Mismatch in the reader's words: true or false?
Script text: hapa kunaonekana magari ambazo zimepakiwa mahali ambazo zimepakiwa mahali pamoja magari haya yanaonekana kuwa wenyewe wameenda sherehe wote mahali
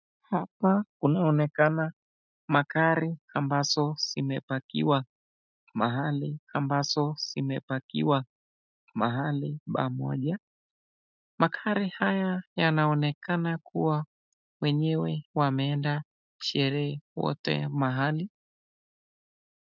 false